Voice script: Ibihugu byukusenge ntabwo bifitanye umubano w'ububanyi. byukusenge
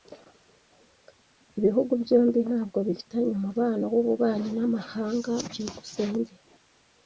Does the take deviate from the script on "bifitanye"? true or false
false